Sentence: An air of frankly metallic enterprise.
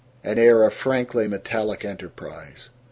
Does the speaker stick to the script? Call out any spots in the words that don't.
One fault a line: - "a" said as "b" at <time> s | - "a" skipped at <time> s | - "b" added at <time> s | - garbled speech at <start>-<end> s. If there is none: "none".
none